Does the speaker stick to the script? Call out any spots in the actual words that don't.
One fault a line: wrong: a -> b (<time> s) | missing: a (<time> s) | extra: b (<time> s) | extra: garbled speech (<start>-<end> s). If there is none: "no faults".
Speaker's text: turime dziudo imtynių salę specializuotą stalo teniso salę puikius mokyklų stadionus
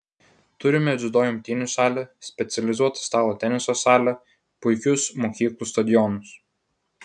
no faults